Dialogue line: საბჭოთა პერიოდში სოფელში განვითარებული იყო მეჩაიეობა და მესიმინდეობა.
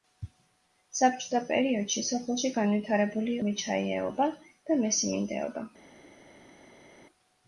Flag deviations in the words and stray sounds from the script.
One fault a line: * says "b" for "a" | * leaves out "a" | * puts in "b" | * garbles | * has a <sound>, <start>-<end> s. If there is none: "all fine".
* leaves out "იყო"